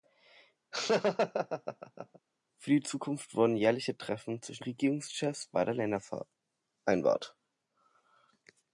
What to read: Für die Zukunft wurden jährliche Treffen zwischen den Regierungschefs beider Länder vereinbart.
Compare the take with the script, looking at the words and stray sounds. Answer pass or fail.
fail